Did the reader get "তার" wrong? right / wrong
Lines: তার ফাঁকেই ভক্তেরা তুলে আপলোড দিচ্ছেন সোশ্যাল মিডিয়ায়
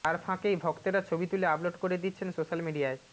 right